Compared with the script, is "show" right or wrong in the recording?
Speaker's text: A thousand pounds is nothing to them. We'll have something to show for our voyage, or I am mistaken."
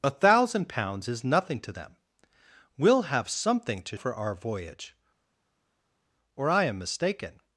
wrong